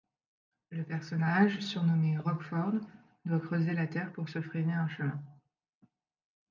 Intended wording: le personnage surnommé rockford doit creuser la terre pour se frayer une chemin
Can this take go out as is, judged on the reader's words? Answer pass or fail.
fail